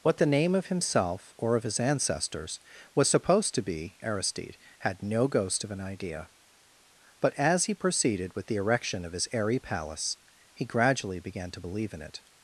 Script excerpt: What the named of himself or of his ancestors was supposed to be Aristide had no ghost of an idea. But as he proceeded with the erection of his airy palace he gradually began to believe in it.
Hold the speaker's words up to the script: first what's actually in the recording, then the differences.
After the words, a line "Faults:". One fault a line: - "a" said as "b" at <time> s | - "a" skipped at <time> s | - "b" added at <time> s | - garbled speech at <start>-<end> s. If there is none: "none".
What the name of himself or of his ancestors was supposed to be Aristide had no ghost of an idea. But as he proceeded with the erection of his airy palace he gradually began to believe in it.
Faults:
- "named" said as "name" at 0.2 s